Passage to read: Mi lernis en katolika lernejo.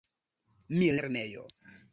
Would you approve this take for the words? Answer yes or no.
no